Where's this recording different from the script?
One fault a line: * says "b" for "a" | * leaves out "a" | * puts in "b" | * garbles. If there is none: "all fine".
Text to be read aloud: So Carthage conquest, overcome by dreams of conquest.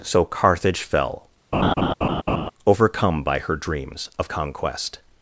* says "fell" for "conquest"
* puts in "her"